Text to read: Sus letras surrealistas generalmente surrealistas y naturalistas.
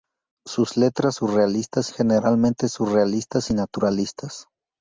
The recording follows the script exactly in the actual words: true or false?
true